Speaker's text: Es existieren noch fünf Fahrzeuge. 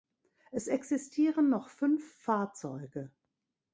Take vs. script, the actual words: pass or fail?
pass